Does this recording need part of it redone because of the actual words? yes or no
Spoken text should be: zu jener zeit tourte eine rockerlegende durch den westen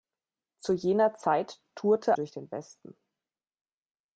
yes